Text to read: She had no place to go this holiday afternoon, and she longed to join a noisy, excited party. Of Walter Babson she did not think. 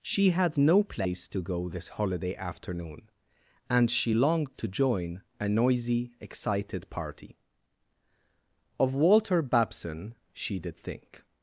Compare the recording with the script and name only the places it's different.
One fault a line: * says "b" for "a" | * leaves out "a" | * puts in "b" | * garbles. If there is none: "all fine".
* leaves out "not"